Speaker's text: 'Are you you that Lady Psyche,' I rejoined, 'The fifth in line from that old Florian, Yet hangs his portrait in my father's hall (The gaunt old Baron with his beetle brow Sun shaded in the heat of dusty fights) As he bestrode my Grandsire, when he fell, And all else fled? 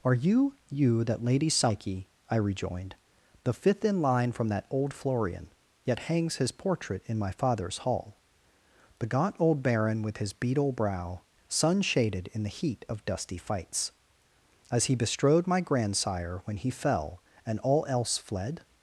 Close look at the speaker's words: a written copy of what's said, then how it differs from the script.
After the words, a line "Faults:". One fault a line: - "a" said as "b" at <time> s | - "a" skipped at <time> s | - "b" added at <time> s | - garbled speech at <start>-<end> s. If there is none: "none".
'Are you you that Lady Psyche,' I rejoined, 'The fifth in line from that old Florian, Yet hangs his portrait in my father's hall (The gaunt old Baron with his beetle brow Sun shaded in the heat of dusty fights) As he bestrode my Grandsire, when he fell, And all else fled?
Faults:
none